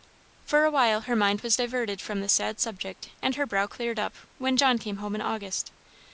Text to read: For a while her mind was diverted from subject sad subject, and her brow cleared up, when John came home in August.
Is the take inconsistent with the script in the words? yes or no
yes